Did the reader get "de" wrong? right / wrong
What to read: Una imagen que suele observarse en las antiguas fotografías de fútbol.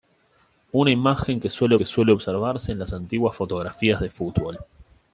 right